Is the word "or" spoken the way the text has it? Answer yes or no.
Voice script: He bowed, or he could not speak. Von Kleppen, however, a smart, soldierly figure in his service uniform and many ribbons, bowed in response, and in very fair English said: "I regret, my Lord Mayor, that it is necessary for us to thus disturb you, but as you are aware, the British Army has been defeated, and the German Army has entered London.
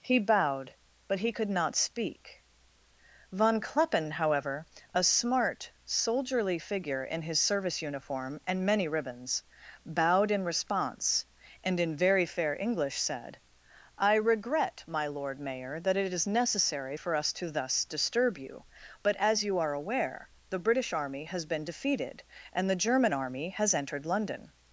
no